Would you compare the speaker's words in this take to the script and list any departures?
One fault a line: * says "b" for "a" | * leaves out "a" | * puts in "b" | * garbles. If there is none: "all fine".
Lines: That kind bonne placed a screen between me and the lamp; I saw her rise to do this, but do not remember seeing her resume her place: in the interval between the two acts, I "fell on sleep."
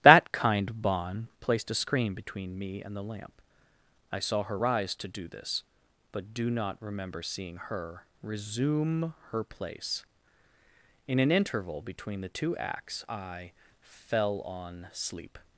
* says "an" for "the"